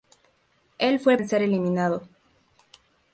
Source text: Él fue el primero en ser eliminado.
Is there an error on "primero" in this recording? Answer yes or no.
yes